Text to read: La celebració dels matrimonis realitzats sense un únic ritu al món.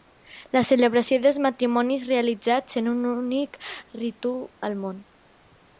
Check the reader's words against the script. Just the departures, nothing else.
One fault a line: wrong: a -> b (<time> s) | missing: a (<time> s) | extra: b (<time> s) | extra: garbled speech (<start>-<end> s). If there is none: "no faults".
wrong: sense -> en (2.8 s)